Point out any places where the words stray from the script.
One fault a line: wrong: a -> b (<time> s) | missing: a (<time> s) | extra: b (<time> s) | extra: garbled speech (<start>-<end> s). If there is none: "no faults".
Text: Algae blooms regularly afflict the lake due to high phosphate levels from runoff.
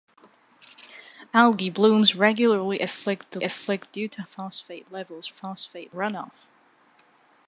wrong: lake -> afflict (3.4 s)
missing: high (4.2 s)
wrong: from -> phosphate (5.3 s)